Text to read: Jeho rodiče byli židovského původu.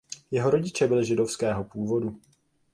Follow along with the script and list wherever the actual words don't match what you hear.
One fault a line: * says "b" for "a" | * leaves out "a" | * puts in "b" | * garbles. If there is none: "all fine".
all fine